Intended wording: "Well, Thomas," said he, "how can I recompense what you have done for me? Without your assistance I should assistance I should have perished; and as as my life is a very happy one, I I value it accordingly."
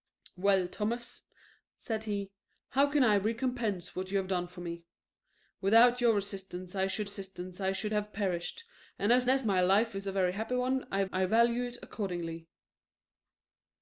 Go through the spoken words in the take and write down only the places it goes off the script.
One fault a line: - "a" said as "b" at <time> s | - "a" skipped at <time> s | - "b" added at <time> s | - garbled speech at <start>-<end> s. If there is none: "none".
none